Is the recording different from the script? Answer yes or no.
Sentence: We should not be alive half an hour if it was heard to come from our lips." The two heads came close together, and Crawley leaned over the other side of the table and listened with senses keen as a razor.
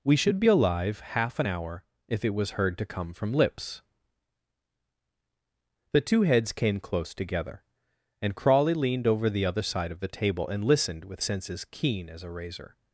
yes